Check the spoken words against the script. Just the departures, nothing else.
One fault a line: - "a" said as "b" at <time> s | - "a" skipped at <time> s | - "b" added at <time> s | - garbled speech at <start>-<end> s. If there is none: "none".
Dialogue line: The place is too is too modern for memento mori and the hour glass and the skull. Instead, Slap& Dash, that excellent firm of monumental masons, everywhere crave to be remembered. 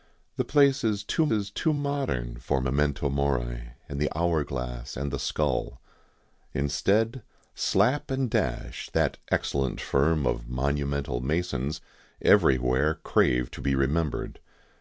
none